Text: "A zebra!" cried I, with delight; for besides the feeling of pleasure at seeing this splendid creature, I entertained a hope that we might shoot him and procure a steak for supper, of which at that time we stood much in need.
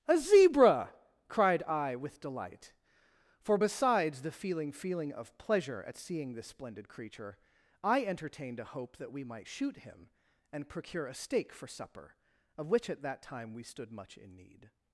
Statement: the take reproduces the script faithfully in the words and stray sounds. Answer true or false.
false